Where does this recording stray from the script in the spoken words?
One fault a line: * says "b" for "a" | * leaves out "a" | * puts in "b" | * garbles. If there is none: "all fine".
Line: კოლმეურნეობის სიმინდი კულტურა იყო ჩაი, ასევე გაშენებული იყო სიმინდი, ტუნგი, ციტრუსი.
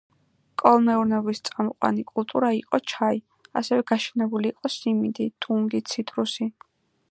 * says "წამყვანი" for "სიმინდი"